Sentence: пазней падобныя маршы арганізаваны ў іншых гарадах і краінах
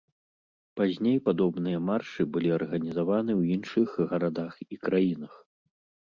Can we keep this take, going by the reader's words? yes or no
no